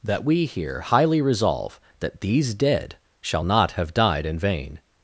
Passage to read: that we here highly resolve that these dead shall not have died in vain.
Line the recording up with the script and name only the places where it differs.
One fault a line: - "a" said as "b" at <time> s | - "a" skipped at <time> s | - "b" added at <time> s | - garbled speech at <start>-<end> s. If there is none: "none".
none